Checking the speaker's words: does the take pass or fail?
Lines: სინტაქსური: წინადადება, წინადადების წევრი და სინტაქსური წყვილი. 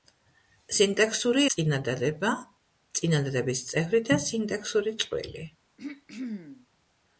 pass